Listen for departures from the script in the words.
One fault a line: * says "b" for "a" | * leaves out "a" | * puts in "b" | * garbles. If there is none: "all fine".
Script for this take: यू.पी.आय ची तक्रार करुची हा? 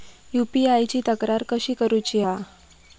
* puts in "कशी"